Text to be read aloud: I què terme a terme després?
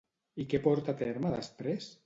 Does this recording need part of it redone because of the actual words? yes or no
yes